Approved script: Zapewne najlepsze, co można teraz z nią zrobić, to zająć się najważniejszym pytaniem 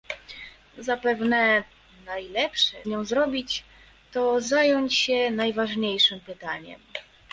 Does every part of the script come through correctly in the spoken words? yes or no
no